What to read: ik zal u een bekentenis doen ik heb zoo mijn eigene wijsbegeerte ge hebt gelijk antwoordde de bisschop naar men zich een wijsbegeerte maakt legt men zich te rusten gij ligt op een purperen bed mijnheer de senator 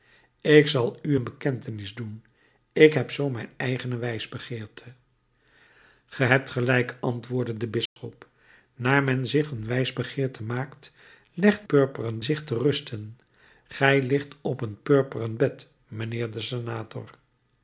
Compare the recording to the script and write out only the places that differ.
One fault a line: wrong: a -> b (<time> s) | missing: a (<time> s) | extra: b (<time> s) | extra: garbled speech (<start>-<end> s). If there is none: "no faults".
wrong: men -> purperen (11.6 s)